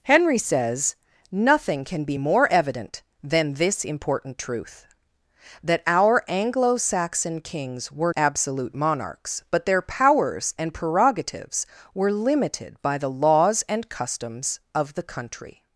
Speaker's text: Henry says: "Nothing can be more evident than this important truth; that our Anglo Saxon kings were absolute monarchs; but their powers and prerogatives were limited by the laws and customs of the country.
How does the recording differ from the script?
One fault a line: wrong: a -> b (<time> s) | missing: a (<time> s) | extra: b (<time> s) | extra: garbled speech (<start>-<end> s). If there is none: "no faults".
no faults